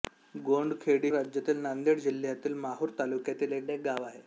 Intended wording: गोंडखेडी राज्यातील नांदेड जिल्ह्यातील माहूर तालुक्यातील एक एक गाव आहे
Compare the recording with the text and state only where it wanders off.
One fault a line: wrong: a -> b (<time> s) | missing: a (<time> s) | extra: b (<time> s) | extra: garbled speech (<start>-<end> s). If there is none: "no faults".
no faults